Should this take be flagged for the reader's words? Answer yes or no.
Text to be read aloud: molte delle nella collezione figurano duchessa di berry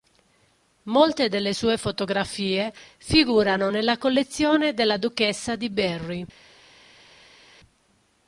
yes